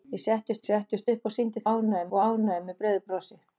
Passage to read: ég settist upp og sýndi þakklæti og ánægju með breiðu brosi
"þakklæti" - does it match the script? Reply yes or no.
no